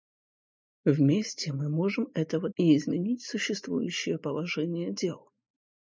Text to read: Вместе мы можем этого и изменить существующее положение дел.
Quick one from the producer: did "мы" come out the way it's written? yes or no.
yes